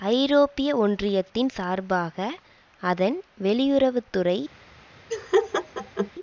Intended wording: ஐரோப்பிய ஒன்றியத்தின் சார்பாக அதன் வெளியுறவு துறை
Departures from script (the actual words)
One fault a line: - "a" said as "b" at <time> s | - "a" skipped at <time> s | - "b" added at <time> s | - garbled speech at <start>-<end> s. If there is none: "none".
none